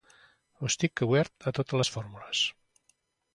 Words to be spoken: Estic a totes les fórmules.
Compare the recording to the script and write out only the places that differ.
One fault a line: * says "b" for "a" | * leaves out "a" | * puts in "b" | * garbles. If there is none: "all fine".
* puts in "obert"